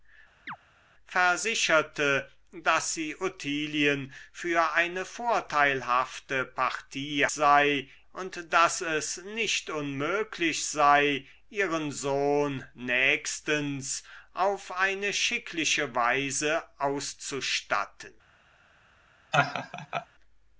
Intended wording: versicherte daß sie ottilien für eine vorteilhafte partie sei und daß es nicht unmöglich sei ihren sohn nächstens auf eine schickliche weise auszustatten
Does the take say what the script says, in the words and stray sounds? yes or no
no